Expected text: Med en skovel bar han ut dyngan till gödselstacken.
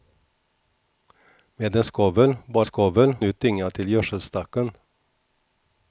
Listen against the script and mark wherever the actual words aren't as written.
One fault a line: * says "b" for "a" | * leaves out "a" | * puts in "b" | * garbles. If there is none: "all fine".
* says "skovel" for "han"